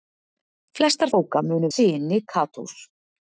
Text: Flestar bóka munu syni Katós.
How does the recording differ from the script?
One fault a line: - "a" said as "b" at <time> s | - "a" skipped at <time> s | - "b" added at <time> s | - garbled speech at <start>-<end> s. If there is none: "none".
none